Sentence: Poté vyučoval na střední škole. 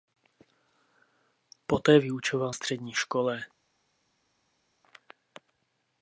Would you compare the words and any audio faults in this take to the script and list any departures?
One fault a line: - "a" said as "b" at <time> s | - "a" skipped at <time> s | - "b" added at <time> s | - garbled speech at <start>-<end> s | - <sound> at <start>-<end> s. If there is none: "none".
- "na" skipped at 2.5 s